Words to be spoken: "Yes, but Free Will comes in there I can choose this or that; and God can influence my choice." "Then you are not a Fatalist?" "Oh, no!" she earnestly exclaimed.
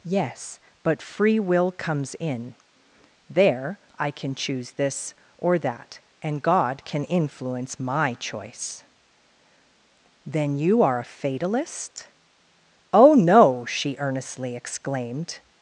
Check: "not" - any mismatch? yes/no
yes